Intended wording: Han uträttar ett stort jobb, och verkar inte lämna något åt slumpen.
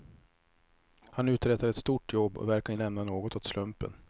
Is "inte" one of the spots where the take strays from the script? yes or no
yes